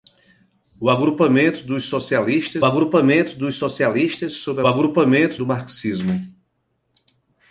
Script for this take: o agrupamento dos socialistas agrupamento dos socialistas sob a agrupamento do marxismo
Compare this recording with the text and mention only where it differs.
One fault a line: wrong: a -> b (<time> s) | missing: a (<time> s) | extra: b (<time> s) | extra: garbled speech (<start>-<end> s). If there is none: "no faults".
no faults